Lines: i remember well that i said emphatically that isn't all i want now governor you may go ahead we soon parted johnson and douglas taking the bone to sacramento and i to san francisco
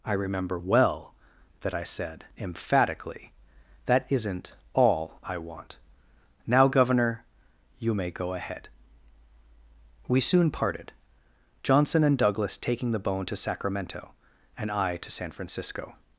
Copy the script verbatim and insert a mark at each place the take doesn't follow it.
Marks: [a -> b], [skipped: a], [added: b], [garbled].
i remember well that i said emphatically that isn't all i want now governor you may go ahead we soon parted johnson and douglas taking the bone to sacramento and i to san francisco